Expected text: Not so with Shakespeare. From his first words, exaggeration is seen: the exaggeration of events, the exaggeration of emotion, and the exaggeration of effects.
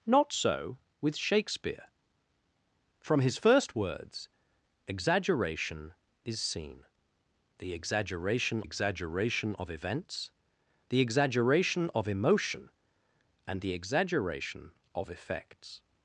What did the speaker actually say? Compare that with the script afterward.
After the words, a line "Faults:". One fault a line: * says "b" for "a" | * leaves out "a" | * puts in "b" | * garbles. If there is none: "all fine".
Not so with Shakespeare. From his first words, exaggeration is seen: the exaggeration exaggeration of events, the exaggeration of emotion, and the exaggeration of effects.
Faults:
* puts in "exaggeration"